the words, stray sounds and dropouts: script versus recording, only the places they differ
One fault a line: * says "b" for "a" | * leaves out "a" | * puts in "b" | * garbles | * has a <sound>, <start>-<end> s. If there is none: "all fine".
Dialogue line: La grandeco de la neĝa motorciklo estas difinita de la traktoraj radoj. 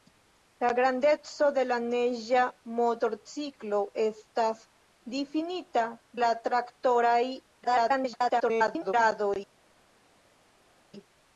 * leaves out "de"
* garbles